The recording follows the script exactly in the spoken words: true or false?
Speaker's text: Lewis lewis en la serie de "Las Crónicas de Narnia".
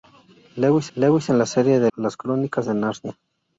true